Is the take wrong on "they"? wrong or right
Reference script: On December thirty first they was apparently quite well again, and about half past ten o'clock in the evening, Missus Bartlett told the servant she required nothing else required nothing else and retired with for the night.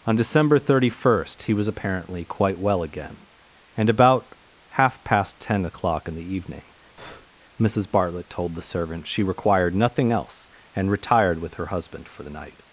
wrong